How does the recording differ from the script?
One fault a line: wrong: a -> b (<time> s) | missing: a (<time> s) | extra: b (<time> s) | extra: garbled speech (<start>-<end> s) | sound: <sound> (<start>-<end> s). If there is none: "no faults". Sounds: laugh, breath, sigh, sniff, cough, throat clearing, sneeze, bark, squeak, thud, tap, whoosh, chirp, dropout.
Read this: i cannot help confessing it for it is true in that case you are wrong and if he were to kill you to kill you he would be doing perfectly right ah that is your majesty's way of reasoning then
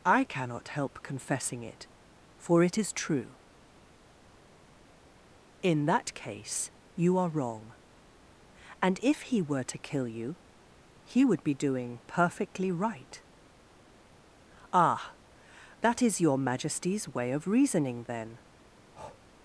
missing: to kill you (10.4 s)
sound: breath (18.9-19.2 s)